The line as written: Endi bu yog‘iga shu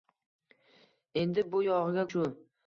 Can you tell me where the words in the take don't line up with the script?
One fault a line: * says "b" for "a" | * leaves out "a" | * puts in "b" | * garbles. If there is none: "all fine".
all fine